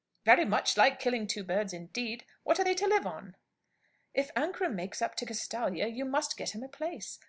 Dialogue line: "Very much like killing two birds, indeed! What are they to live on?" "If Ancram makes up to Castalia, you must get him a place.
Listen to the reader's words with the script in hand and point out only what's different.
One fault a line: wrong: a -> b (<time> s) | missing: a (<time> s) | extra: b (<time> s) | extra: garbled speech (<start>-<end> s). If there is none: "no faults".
no faults